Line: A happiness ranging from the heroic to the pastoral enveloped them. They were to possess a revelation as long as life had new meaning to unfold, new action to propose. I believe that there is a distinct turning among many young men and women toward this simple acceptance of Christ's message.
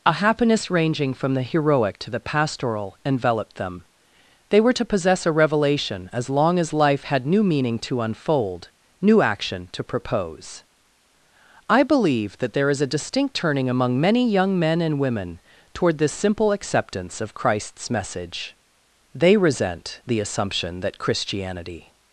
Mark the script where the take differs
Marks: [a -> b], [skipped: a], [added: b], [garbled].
A happiness ranging from the heroic to the pastoral enveloped them. They were to possess a revelation as long as life had new meaning to unfold, new action to propose. I believe that there is a distinct turning among many young men and women toward this simple acceptance of Christ's message. [added: They resent the assumption that Christianity]